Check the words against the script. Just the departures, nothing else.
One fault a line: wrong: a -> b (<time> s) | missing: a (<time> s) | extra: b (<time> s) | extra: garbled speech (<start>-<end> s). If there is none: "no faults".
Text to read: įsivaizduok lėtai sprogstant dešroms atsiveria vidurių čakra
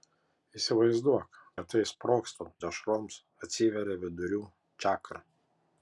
no faults